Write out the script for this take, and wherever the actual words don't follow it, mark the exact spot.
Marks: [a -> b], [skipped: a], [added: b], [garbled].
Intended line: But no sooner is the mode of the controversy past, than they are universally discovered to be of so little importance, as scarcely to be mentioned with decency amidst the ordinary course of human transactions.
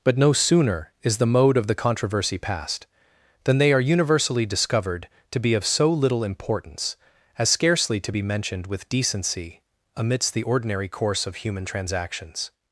But no sooner is the mode of the controversy past, than they are universally discovered to be of so little importance, as scarcely to be mentioned with decency amidst the ordinary course of human transactions.